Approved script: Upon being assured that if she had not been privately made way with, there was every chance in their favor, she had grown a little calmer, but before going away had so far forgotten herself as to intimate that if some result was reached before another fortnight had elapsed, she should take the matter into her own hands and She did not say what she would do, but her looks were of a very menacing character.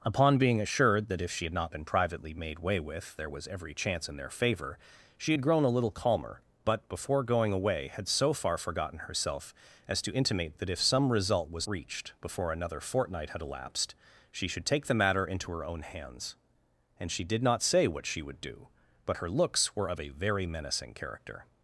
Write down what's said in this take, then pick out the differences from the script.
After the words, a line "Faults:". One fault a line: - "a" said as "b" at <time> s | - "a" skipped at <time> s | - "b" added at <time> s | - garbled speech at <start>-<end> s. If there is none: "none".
Upon being assured that if she had not been privately made way with, there was every chance in their favor, she had grown a little calmer, but before going away had so far forgotten herself as to intimate that if some result was reached before another fortnight had elapsed, she should take the matter into her own hands and She did not say what she would do, but her looks were of a very menacing character.
Faults:
none